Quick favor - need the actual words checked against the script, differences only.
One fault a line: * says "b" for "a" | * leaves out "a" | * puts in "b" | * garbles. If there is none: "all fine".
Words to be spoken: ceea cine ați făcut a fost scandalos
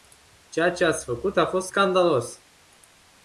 * says "ce" for "cine"